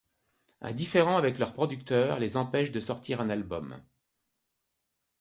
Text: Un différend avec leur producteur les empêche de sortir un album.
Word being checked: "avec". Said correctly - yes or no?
yes